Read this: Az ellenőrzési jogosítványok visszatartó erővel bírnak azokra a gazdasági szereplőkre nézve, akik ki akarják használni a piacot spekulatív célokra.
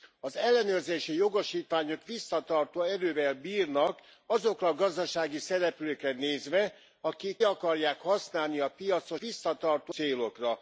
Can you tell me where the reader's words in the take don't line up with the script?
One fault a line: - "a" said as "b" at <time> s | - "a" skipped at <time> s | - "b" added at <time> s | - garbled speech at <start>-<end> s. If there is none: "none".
- "ki" skipped at 7.4 s
- "spekulatív" said as "visszatartó" at 9.2 s